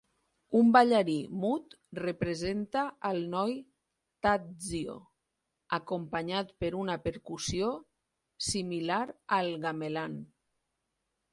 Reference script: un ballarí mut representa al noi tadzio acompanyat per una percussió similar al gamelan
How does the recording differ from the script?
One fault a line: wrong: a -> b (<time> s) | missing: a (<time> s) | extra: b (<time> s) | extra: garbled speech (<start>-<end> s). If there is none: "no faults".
no faults